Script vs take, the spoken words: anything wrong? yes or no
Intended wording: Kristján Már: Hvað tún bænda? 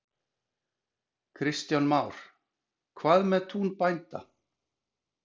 yes